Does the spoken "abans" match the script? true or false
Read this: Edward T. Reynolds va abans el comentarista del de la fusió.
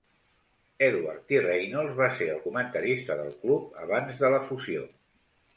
false